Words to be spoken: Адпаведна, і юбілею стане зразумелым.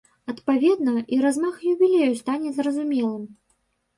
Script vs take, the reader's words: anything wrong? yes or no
yes